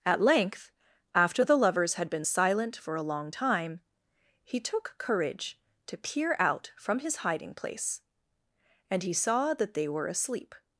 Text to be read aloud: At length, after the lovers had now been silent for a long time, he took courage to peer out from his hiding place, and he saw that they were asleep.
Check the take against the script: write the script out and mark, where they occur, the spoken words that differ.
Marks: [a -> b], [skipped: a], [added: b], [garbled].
At length, after the lovers had [skipped: now] been silent for a long time, he took courage to peer out from his hiding place, and he saw that they were asleep.